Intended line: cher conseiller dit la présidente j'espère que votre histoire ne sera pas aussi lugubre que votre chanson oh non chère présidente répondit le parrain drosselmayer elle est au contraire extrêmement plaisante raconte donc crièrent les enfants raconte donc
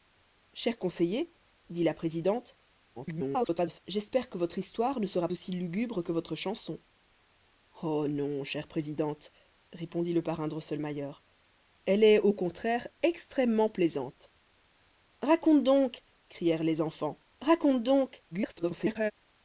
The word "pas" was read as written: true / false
false